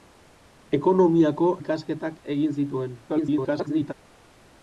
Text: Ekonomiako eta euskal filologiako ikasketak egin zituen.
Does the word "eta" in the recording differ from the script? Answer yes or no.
yes